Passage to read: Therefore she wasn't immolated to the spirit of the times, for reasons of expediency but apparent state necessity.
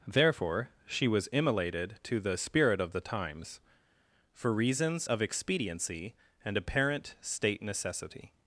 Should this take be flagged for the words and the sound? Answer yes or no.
yes